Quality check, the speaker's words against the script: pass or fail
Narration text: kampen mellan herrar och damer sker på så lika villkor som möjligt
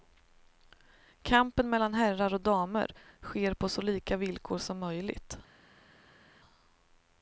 pass